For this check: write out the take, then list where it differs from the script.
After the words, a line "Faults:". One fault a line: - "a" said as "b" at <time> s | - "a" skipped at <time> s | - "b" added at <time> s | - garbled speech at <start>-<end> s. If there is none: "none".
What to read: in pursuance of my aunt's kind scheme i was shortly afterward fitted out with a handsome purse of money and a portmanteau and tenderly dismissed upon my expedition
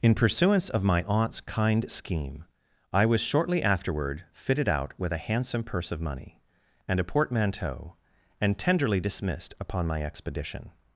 in pursuance of my aunt's kind scheme i was shortly afterward fitted out with a handsome purse of money and a portmanteau and tenderly dismissed upon my expedition
Faults:
none